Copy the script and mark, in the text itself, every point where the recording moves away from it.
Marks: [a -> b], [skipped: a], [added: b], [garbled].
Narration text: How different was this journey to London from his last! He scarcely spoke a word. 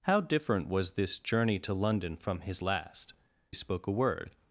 How different was this journey to London from his last! [skipped: He scarcely] spoke a word.